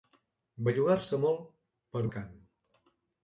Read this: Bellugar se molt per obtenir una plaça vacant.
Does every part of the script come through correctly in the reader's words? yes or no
no